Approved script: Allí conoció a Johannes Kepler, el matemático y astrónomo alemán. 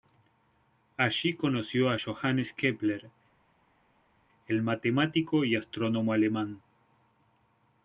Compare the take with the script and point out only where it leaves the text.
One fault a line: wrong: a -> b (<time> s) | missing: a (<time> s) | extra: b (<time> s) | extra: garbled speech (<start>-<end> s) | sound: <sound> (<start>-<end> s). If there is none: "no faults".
no faults